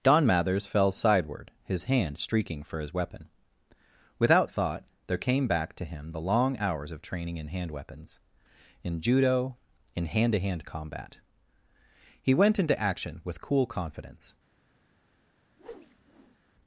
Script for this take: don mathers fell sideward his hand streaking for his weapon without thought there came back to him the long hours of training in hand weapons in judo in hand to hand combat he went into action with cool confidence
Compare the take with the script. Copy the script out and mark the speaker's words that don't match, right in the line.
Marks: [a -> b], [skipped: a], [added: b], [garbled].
don mathers fell sideward his hand streaking for his weapon without thought there came back to him the long hours of training in hand weapons in judo in hand to hand combat he went into action with cool confidence